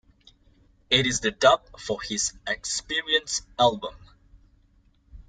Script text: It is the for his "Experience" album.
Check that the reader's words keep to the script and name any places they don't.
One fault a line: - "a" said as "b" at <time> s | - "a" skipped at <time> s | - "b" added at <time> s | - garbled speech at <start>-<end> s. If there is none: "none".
- "dub" added at 1.3 s